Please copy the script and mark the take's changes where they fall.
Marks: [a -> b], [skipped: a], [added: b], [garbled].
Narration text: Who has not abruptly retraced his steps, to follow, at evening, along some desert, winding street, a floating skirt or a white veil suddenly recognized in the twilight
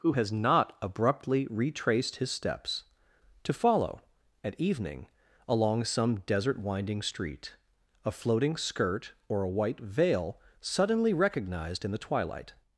Who has not abruptly retraced his steps, to follow, at evening, along some desert, winding street, a floating skirt or a white veil suddenly recognized in the twilight